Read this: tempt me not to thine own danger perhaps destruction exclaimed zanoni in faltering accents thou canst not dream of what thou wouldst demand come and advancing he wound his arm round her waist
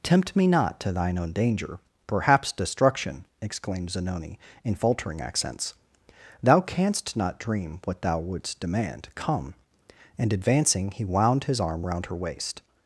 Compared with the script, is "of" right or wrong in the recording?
wrong